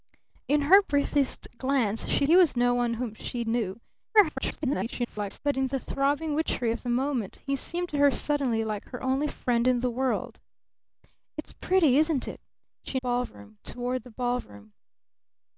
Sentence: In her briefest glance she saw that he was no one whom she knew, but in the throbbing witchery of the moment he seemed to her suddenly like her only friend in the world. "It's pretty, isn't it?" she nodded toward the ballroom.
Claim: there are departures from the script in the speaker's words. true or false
true